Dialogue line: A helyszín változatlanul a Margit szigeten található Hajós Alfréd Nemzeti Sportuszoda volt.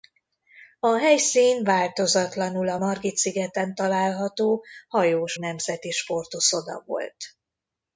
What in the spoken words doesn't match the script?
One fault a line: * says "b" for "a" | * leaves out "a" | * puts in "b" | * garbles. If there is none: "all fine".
* leaves out "Alfréd"